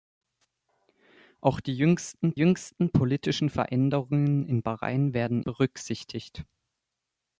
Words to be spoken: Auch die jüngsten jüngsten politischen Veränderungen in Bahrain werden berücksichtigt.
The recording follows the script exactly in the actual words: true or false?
true